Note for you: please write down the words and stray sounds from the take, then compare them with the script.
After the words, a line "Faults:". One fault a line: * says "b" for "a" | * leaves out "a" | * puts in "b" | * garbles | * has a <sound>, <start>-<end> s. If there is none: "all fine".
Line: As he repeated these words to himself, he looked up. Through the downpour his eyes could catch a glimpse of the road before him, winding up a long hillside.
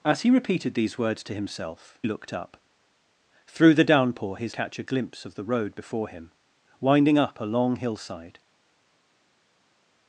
As he repeated these words to himself, looked up. Through the downpour his catch a glimpse of the road before him, winding up a long hillside.
Faults:
* leaves out "he"
* leaves out "eyes could"